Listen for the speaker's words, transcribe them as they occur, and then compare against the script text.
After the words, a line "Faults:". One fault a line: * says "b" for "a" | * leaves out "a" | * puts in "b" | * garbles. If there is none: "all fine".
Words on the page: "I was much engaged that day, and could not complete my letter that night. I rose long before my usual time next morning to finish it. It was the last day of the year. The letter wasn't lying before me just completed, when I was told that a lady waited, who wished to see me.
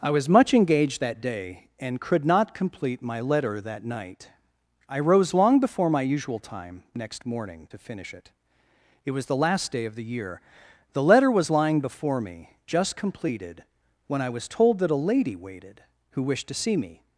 "I was much engaged that day, and could not complete my letter that night. I rose long before my usual time next morning to finish it. It was the last day of the year. The letter was lying before me just completed, when I was told that a lady waited, who wished to see me.
Faults:
* says "was" for "wasn't"